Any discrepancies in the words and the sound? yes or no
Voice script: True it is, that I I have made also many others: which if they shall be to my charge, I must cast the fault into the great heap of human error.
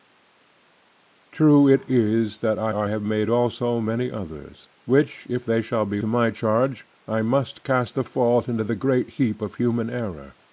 no